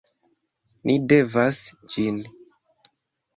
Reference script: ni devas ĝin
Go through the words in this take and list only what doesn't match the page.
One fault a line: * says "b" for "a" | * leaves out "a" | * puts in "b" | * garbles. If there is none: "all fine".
all fine